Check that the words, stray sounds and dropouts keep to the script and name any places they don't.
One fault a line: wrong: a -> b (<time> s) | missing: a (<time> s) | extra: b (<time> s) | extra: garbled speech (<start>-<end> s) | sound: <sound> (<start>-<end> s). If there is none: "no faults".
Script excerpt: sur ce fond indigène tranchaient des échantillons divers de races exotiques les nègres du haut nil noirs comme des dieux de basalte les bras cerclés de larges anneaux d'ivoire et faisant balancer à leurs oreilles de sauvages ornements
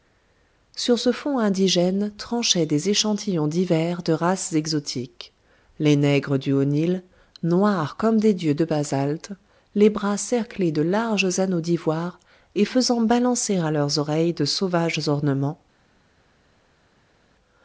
no faults